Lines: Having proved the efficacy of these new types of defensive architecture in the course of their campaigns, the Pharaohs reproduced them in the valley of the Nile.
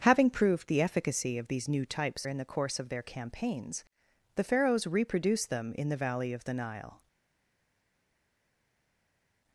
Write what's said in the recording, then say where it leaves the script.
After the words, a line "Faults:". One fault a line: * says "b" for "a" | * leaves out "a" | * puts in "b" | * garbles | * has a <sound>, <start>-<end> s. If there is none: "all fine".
Having proved the efficacy of these new types in the course of their campaigns, the Pharaohs reproduced them in the valley of the Nile.
Faults:
* leaves out "of defensive architecture"